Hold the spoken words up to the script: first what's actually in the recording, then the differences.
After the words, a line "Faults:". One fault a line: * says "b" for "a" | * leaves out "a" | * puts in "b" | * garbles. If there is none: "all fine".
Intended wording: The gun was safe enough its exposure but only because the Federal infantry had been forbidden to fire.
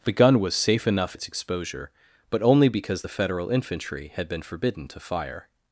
The gun was safe enough its exposure but only because the Federal infantry had been forbidden to fire.
Faults:
all fine